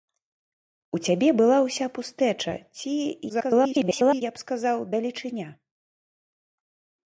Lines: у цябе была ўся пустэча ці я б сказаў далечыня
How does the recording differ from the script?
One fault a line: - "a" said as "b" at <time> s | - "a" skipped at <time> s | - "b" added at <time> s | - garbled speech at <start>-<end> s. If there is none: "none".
- garbled speech at 3.3-4.2 s